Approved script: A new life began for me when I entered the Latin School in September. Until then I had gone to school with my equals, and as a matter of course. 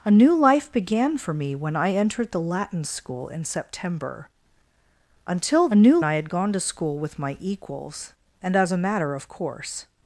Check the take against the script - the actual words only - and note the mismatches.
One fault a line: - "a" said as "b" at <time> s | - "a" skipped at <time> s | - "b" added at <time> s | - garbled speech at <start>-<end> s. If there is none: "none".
- "then" said as "new" at 5.7 s